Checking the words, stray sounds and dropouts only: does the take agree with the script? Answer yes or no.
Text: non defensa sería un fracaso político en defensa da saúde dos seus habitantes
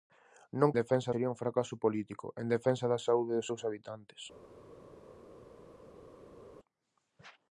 yes